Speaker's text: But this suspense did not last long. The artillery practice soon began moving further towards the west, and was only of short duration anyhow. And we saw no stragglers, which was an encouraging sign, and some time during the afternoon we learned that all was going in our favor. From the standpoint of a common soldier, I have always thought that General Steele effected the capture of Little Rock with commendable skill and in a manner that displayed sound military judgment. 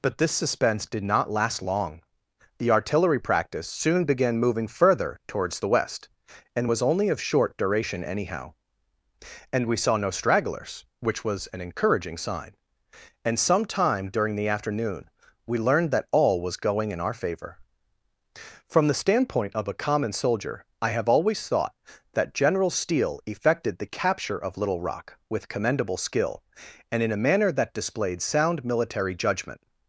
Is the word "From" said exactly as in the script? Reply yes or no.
yes